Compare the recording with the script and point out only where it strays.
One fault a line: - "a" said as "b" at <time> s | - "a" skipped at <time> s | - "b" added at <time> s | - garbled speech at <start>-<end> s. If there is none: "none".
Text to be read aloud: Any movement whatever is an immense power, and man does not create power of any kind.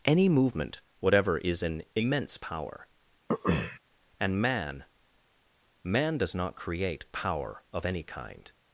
- "man" added at 5.8 s